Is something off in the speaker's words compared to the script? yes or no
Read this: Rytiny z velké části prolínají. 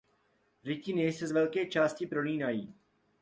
yes